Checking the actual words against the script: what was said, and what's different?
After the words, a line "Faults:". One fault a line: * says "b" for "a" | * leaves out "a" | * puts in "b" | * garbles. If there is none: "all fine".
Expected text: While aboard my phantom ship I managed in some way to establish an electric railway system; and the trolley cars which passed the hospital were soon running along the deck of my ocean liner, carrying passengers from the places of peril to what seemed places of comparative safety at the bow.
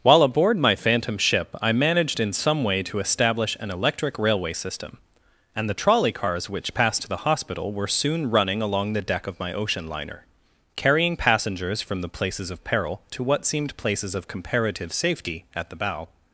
While aboard my phantom ship I managed in some way to establish an electric railway system; and the trolley cars which passed to the hospital were soon running along the deck of my ocean liner, carrying passengers from the places of peril to what seemed places of comparative safety at the bow.
Faults:
* puts in "to"